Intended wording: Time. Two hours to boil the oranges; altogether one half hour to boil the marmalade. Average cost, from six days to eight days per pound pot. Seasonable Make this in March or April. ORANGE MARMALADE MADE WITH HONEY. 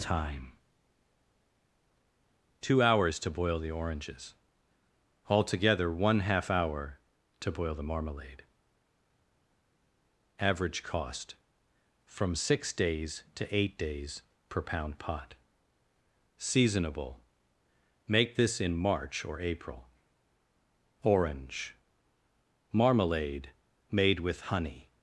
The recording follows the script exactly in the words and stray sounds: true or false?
true